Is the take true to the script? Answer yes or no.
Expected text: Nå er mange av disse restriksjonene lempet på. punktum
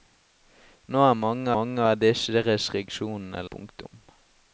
no